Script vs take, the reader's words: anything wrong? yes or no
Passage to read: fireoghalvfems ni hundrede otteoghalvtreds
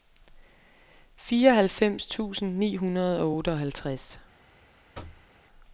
yes